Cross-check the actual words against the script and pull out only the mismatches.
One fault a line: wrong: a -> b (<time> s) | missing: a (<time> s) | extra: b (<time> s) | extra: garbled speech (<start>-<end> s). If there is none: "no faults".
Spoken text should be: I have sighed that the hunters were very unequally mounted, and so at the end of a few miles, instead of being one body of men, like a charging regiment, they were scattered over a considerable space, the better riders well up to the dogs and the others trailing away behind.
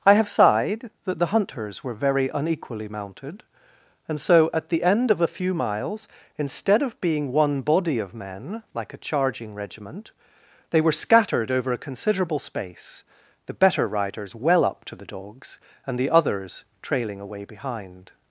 no faults